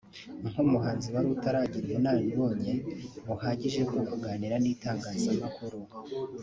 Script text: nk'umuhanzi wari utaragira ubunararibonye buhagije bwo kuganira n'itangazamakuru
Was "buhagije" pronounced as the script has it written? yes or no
yes